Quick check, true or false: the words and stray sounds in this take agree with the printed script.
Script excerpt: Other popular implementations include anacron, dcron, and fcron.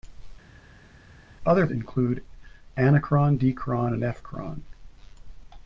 false